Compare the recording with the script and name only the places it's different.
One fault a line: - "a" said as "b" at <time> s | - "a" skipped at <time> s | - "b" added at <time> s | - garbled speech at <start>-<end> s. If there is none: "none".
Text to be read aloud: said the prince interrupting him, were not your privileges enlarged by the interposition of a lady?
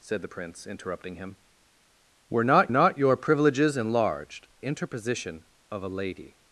- "not" added at 2.7 s
- "by the" skipped at 4.5 s